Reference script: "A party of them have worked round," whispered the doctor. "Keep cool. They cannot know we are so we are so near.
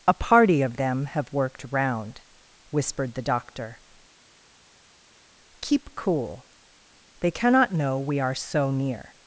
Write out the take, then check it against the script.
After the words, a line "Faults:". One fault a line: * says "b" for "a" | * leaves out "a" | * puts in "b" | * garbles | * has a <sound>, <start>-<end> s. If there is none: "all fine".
"A party of them have worked round," whispered the doctor. "Keep cool. They cannot know we are so near.
Faults:
* leaves out "we are so"